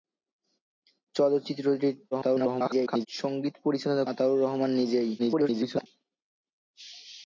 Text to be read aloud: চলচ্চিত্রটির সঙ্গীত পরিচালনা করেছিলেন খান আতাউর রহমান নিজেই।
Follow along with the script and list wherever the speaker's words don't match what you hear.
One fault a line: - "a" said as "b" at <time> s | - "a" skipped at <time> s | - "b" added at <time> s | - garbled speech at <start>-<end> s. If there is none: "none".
- garbled speech at 2.1-3.1 s
- "করেছিলেন খান" skipped at 4.0 s
- garbled speech at 5.2-5.9 s